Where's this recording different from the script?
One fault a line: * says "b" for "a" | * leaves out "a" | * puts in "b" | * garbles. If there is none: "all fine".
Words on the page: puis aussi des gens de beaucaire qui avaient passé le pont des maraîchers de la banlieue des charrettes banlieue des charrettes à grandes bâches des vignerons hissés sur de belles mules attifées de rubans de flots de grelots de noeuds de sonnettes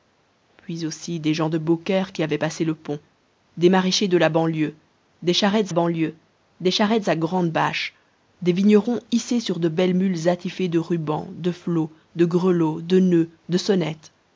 all fine